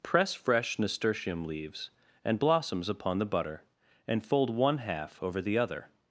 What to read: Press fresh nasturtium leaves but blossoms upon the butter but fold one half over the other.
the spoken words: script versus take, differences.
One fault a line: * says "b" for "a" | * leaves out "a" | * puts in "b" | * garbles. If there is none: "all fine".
* says "and" for "but"
* says "and" for "but"